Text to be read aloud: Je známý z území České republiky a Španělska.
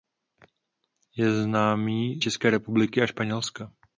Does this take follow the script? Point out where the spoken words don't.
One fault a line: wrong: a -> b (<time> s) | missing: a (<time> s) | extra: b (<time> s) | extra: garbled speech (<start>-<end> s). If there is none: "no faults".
missing: z území (2.2 s)